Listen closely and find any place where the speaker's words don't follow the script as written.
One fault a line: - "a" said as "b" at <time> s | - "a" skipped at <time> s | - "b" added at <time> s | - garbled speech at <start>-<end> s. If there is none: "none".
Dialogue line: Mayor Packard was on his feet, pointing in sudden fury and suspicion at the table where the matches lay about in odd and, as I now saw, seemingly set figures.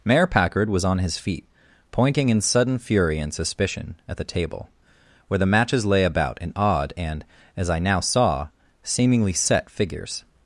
none